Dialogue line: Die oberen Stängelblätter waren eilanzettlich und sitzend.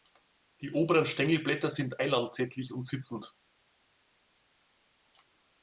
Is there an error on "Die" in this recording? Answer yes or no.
no